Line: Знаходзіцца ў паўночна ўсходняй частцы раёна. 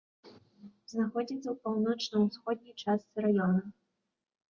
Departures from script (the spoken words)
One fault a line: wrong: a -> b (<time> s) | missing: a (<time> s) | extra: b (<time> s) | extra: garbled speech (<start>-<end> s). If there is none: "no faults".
no faults